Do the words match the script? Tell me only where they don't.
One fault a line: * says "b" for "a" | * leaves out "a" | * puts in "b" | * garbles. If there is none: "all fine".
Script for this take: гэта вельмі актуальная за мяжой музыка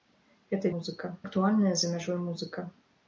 * says "музыка" for "вельмі"